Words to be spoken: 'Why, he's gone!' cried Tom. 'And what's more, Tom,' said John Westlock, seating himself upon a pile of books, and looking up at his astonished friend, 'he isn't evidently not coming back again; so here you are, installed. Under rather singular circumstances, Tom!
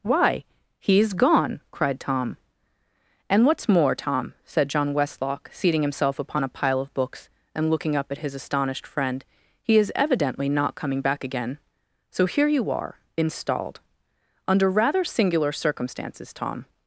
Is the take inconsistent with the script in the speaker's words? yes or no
yes